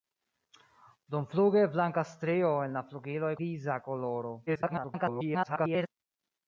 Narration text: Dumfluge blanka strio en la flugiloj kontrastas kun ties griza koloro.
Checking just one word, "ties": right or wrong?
wrong